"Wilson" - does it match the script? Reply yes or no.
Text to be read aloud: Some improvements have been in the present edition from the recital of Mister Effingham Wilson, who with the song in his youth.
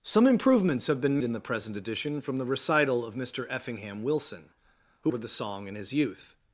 yes